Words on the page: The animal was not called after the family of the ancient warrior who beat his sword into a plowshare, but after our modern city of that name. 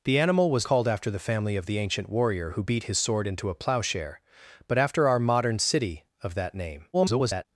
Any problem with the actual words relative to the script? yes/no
yes